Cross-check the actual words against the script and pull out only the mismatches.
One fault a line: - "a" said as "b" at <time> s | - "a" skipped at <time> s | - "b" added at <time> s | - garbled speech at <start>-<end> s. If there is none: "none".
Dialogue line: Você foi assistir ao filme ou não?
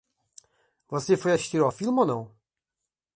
none